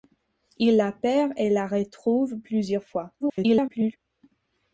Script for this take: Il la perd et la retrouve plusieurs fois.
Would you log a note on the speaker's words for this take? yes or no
yes